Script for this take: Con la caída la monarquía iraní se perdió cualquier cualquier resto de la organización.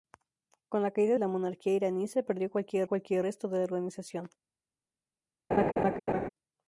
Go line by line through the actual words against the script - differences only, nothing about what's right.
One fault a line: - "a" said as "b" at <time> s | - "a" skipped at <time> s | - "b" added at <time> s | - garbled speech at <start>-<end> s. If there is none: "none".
none